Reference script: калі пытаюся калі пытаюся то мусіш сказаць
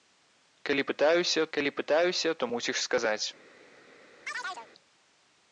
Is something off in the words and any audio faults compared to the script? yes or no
yes